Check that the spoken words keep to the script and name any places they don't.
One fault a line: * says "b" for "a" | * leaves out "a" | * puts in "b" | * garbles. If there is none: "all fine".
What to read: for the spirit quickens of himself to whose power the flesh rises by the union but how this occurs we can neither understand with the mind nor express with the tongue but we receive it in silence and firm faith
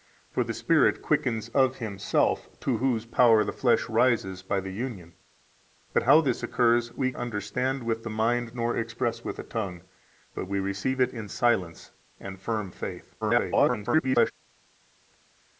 * leaves out "can neither"
* garbles